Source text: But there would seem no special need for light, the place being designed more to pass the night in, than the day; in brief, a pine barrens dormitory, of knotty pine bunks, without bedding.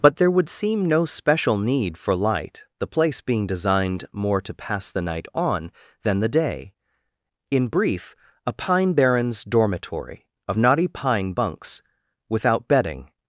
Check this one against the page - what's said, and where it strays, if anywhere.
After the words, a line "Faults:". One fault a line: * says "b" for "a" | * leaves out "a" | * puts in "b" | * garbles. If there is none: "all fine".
But there would seem no special need for light, the place being designed more to pass the night on, than the day; in brief, a pine barrens dormitory, of knotty pine bunks, without bedding.
Faults:
* says "on" for "in"